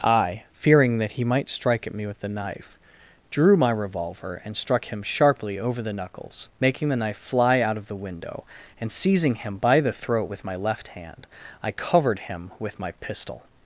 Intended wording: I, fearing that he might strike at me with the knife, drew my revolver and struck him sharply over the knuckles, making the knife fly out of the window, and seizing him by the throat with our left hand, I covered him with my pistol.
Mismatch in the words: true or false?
true